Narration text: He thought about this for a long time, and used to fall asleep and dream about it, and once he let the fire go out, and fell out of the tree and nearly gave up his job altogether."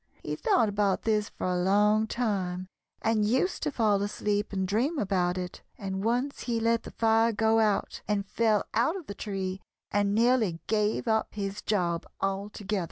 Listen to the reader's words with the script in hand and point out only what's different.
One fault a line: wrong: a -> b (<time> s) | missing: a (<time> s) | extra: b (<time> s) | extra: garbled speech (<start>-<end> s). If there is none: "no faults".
no faults